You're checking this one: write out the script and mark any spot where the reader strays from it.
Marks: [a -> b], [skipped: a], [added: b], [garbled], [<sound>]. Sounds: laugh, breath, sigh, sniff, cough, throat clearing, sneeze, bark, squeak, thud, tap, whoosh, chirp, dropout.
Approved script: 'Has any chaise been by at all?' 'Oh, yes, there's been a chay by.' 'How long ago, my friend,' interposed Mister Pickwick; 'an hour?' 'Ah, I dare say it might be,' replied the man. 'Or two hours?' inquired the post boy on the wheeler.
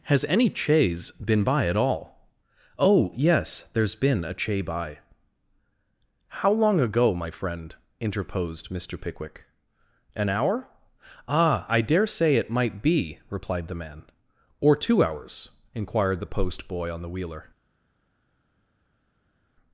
'Has any chaise been by at all?' 'Oh, yes, there's been a chay by.' 'How long ago, my friend,' interposed Mister Pickwick; 'an hour?' 'Ah, I dare say it might be,' replied the man. 'Or two hours?' inquired the post boy on the wheeler.